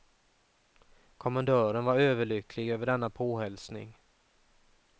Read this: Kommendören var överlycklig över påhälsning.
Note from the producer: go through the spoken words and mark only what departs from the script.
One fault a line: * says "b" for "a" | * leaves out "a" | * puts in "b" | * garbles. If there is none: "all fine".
* puts in "denna"